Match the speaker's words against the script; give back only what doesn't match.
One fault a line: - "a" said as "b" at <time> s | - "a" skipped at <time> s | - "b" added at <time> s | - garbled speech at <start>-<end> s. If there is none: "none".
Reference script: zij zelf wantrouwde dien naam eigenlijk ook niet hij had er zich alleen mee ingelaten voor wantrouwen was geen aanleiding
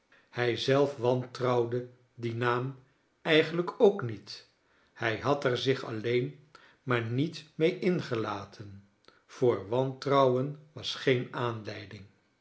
- "zij" said as "hij" at 0.3 s
- "maar niet" added at 6.8 s